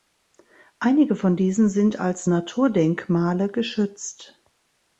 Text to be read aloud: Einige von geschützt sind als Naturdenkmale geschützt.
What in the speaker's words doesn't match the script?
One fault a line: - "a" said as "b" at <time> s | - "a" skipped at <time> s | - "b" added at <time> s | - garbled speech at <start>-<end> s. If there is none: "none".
- "geschützt" said as "diesen" at 1.4 s